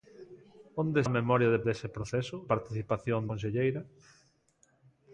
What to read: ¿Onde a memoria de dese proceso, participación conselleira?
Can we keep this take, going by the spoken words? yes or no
yes